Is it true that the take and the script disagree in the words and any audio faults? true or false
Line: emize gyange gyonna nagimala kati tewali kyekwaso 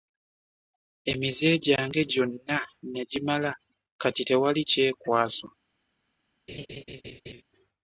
true